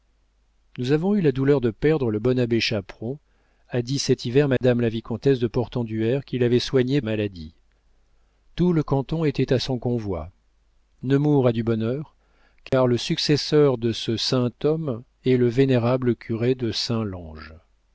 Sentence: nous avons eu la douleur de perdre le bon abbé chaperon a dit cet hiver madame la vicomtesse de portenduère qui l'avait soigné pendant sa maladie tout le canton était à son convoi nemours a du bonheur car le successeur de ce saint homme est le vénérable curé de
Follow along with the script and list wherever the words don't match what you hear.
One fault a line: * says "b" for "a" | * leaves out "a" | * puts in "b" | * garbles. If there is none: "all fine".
* leaves out "pendant sa"